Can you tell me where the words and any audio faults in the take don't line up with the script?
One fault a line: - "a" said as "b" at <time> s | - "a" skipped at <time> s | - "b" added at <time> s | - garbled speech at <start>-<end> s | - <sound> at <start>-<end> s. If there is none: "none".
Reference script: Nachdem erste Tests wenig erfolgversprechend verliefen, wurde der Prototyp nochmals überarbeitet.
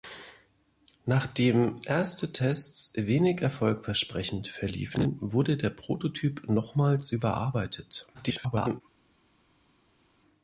- garbled speech at 8.1-8.8 s